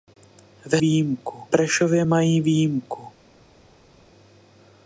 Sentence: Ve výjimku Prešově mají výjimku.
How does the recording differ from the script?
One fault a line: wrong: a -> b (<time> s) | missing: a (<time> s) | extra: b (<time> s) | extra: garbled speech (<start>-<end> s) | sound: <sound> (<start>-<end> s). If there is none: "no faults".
no faults